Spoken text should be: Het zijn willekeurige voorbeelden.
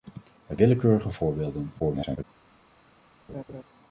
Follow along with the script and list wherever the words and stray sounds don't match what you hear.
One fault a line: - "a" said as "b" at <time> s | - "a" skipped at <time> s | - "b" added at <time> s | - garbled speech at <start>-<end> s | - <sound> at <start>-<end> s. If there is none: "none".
- "zijn" skipped at 0.6 s
- garbled speech at 1.8-2.2 s
- laugh at 3.3-3.6 s